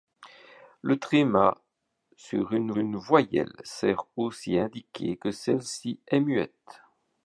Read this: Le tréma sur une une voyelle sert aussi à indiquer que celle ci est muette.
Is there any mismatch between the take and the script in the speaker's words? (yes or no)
no